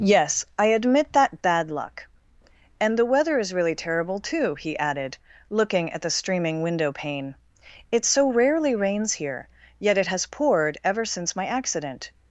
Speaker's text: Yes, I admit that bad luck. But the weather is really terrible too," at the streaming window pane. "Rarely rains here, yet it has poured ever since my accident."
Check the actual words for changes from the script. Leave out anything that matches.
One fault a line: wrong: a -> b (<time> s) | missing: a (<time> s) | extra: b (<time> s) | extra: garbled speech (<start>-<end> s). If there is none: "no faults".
wrong: But -> And (2.8 s)
extra: he added looking (4.5 s)
extra: It so (7.9 s)